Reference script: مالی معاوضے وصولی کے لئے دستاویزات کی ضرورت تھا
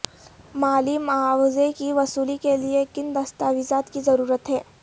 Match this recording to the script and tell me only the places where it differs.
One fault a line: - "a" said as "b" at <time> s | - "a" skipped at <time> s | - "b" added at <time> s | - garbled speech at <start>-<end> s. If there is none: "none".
- "کی" added at 1.7 s
- "کن" added at 2.9 s
- "تھا" said as "ہے" at 4.5 s